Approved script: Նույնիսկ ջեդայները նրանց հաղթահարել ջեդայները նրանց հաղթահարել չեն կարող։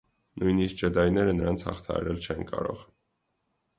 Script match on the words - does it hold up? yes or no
no